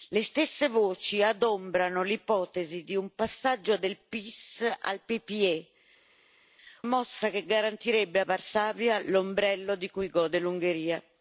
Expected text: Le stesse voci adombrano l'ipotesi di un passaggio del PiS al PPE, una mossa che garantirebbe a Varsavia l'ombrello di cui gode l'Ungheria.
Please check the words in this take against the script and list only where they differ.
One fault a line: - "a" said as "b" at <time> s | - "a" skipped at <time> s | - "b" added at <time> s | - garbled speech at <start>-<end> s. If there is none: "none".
- "una" skipped at 5.7 s